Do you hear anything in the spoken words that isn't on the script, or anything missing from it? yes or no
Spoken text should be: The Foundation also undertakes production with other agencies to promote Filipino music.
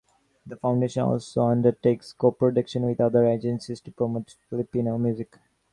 yes